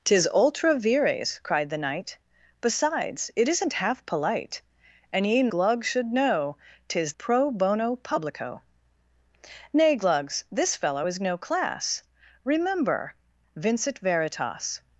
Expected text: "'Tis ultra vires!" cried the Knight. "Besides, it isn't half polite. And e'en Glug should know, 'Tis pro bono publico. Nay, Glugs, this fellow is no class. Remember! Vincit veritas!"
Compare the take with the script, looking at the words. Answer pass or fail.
pass